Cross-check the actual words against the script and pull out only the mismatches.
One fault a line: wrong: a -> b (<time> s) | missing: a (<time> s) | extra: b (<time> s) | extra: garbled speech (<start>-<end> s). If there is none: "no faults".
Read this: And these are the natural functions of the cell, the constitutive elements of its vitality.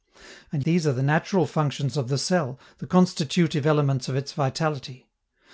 no faults